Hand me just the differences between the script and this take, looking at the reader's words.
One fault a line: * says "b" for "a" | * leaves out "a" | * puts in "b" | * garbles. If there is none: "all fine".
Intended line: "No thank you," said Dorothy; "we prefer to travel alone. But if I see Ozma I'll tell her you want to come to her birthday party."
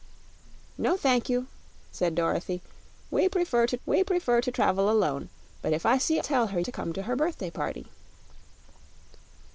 * puts in "we prefer to"
* leaves out "Ozma I'll"
* leaves out "you want"